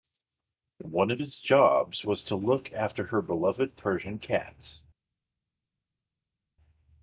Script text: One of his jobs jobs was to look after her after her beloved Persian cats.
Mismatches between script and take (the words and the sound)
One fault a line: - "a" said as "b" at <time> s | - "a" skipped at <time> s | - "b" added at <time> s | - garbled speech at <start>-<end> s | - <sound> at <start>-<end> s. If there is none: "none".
- "jobs" skipped at 2.0 s
- "after her" skipped at 3.2 s